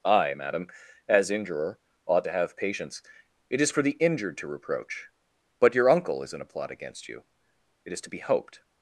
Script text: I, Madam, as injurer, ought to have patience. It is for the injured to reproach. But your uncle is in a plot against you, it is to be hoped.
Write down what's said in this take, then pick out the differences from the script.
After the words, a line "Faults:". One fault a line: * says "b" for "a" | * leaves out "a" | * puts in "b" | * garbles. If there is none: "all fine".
I, Madam, as injurer, ought to have patience. It is for the injured to reproach. But your uncle is in a plot against you, it is to be hoped.
Faults:
all fine